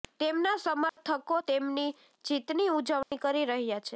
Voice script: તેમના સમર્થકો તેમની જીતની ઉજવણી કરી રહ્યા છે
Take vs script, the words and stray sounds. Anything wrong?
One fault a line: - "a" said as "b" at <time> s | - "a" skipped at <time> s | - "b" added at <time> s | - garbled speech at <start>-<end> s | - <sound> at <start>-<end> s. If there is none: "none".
- dropout at 0.9-1.0 s
- dropout at 3.0-3.1 s